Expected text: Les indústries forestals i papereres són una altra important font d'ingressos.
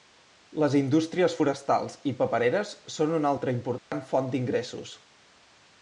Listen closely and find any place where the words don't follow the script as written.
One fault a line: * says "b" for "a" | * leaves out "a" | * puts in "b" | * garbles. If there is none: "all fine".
all fine